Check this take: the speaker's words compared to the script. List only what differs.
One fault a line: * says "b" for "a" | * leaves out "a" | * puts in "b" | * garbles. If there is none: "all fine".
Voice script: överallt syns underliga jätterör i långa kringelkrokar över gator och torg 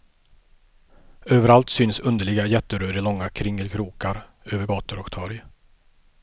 all fine